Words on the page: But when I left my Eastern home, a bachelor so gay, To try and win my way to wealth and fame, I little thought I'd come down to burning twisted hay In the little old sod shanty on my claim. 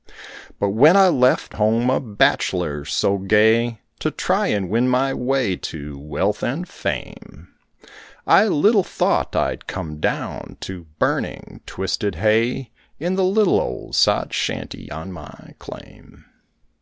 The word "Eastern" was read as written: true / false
false